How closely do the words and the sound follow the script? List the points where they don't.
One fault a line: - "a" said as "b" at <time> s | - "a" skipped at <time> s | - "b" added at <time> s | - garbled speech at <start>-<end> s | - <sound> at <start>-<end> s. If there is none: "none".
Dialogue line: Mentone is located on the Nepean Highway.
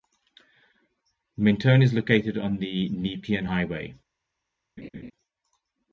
- laugh at 4.8-5.1 s